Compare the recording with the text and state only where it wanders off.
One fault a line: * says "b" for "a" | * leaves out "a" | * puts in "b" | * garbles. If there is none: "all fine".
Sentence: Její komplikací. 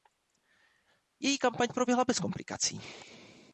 * puts in "kampaň proběhla bez"